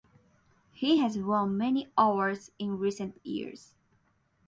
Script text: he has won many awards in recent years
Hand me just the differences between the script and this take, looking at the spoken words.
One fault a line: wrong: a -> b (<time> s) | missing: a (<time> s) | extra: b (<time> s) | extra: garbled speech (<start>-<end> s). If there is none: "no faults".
no faults